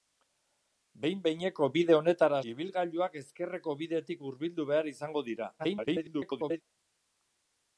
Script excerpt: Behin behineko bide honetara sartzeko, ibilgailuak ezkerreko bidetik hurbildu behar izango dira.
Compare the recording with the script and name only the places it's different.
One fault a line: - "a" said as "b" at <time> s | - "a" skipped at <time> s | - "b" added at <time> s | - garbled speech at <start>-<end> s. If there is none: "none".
- "sartzeko" skipped at 2.4 s
- garbled speech at 5.6-6.6 s